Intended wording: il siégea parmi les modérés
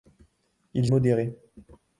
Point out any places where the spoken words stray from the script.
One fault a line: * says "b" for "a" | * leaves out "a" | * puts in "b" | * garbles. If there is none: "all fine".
* leaves out "siégea parmi les"